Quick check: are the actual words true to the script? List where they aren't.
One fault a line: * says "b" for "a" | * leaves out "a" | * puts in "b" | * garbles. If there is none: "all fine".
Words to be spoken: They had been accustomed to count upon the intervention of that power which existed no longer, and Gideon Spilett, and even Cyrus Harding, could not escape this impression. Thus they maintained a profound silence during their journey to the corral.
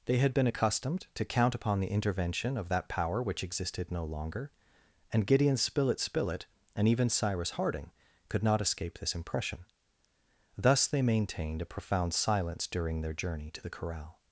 * puts in "Spilett"